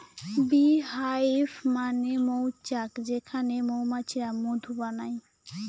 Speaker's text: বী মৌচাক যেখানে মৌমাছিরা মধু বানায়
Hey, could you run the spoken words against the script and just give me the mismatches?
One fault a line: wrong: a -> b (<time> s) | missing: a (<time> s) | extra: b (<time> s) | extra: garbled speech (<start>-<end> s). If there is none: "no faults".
extra: হাইভ মানে (0.9 s)